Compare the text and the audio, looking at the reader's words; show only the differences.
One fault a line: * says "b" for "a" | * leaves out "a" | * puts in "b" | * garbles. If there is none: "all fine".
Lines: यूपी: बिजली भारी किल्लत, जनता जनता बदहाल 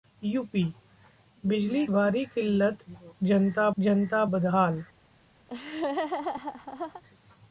all fine